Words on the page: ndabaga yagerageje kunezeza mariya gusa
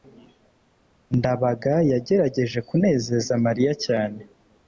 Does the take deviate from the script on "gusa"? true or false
true